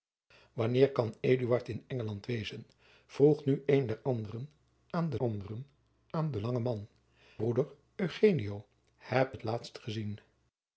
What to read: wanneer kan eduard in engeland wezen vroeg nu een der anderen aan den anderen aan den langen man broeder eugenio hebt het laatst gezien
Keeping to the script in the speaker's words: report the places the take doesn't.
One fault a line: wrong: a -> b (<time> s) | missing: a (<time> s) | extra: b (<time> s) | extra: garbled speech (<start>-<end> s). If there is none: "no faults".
no faults